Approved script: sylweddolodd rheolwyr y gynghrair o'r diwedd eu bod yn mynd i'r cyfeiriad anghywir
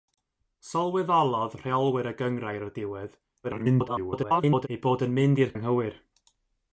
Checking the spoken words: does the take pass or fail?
fail